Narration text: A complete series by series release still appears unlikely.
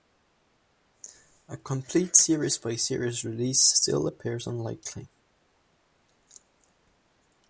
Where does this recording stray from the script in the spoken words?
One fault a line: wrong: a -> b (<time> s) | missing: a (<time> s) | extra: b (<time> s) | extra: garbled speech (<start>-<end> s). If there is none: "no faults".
no faults